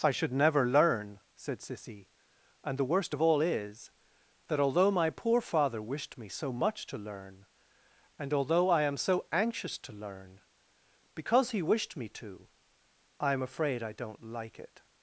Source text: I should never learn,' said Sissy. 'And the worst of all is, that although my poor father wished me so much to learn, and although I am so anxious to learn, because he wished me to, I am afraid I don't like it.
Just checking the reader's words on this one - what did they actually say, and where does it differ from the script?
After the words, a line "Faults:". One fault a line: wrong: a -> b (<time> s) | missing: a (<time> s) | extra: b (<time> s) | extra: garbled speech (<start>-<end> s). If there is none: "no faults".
I should never learn,' said Sissy. 'And the worst of all is, that although my poor father wished me so much to learn, and although I am so anxious to learn, because he wished me to, I am afraid I don't like it.
Faults:
no faults